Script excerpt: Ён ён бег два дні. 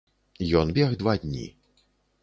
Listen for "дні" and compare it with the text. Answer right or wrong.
right